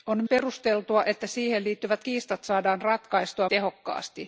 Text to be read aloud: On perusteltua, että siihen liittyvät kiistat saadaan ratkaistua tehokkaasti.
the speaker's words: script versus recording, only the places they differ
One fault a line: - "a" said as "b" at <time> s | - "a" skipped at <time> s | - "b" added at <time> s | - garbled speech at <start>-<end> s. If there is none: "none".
none